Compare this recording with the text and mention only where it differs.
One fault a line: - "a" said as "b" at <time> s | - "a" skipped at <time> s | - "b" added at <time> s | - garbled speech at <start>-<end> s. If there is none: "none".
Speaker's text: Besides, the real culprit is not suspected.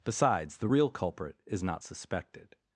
none